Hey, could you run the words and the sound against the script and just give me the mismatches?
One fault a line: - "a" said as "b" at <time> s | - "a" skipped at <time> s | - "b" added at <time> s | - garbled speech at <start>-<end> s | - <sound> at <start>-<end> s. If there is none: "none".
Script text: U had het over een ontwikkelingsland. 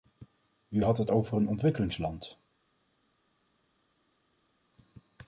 none